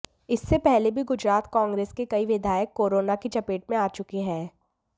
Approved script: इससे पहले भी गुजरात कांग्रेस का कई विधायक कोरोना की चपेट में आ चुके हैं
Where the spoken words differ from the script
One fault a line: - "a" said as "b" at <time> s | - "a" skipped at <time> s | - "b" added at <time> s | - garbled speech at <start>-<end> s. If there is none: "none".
- "का" said as "के" at 1.9 s